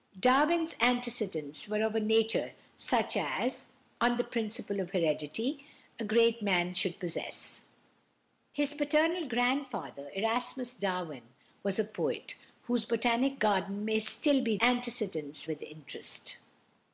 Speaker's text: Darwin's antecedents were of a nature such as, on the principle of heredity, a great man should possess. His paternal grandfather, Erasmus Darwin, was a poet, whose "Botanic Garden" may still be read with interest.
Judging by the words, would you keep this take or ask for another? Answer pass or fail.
fail